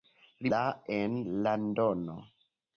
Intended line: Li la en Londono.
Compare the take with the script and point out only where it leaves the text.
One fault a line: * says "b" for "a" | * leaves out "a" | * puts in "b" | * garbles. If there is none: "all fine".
all fine